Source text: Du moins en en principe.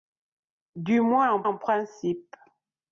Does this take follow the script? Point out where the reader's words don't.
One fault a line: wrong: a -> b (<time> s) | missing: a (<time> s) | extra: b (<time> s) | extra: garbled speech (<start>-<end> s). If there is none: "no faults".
no faults